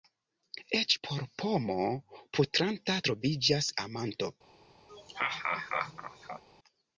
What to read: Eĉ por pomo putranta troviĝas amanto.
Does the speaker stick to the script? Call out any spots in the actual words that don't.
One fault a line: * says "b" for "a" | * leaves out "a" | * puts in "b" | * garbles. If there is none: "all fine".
all fine